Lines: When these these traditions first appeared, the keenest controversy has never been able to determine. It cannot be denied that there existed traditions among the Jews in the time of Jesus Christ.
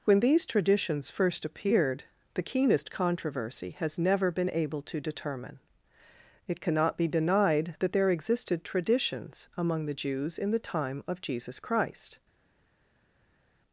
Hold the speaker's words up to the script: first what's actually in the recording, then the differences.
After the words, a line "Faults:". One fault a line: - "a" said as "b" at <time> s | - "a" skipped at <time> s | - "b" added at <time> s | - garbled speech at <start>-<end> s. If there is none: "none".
When these traditions first appeared, the keenest controversy has never been able to determine. It cannot be denied that there existed traditions among the Jews in the time of Jesus Christ.
Faults:
- "these" skipped at 0.5 s